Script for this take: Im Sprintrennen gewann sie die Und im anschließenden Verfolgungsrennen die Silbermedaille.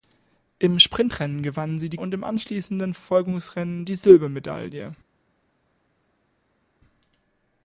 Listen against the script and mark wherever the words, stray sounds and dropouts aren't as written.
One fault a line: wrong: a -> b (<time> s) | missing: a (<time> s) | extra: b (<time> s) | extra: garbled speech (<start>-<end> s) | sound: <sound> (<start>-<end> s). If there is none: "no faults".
no faults